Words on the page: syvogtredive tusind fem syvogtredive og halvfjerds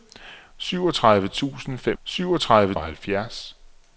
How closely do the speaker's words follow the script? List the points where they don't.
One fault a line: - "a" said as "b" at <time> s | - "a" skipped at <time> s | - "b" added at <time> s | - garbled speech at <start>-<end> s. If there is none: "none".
none